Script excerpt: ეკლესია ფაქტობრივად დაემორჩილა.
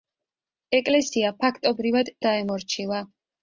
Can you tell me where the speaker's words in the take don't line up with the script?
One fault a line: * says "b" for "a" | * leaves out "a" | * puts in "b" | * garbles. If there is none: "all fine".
all fine